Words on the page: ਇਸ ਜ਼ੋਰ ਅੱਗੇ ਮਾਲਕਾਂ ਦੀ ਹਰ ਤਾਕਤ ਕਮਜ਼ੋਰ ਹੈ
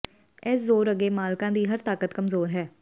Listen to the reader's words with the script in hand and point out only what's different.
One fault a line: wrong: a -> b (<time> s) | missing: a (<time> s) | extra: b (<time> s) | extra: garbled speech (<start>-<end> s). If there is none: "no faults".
no faults